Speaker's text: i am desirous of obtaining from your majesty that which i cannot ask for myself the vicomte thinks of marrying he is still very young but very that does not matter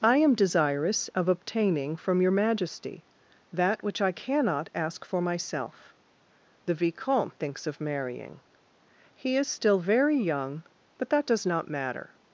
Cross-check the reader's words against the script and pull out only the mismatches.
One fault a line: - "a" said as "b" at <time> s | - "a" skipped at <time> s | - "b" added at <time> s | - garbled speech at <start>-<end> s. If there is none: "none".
- "very" skipped at 11.1 s